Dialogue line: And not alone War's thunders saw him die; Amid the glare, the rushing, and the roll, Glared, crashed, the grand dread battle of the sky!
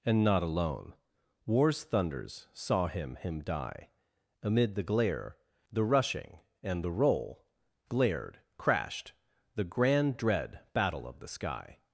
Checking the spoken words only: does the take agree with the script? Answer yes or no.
no